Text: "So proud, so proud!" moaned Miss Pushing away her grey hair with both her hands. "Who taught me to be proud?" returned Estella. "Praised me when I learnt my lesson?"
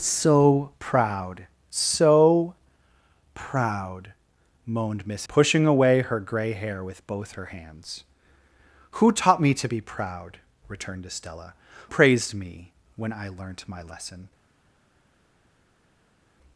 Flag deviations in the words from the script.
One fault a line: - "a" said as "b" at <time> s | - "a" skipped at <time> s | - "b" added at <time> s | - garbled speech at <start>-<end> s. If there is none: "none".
none